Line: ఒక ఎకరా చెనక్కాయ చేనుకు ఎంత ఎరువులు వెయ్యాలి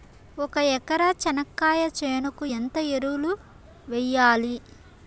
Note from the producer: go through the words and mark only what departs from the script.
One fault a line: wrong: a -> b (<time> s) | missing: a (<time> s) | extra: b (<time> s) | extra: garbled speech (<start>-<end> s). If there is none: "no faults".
no faults